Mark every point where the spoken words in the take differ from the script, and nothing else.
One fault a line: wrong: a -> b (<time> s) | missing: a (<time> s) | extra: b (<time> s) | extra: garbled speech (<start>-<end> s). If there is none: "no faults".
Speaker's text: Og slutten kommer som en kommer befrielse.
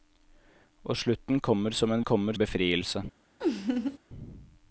no faults